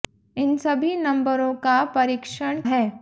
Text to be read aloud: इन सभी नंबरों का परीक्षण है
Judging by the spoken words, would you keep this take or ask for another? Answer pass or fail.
pass